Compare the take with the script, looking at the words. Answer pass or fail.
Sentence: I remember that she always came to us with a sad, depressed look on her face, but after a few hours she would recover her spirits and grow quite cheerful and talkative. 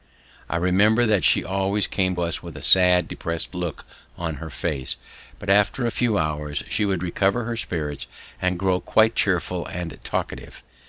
fail